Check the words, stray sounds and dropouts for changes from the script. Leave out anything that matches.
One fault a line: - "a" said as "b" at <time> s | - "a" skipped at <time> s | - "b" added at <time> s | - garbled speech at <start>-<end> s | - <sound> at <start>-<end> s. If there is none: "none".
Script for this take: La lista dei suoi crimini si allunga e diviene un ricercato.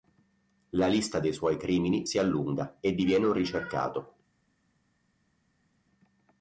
none